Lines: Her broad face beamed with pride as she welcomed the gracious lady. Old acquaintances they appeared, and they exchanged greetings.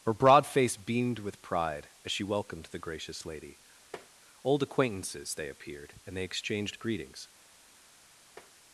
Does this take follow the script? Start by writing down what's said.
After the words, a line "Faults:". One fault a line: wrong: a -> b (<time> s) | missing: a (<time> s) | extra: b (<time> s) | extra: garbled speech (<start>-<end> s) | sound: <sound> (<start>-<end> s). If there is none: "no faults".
Her broad face beamed with pride as she welcomed the gracious lady. Old acquaintances they appeared, and they exchanged greetings.
Faults:
sound: tap (3.9-4.1 s)
sound: tap (8.4-8.5 s)